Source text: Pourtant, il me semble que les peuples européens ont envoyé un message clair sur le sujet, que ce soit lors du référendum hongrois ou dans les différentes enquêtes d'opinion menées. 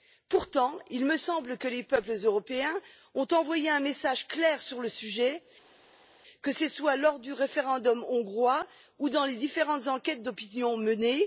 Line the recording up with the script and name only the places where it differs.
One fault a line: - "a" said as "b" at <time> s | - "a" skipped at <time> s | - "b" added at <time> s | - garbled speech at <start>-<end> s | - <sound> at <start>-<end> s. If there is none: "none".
none